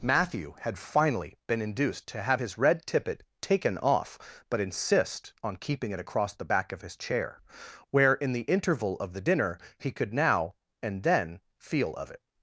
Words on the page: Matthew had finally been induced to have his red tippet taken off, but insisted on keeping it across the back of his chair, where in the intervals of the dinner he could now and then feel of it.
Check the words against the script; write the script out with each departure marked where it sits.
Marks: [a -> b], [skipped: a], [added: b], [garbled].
Matthew had finally been induced to have his red tippet taken off, but [insisted -> insist] on keeping it across the back of his chair, where in the [intervals -> interval] of the dinner he could now and then feel of it.